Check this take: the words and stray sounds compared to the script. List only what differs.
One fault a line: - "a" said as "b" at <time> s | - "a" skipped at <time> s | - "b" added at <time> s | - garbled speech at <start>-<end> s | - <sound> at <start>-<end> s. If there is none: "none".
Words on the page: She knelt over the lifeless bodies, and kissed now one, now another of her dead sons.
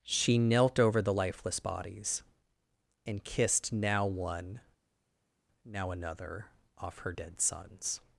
- "of" said as "off" at 6.8 s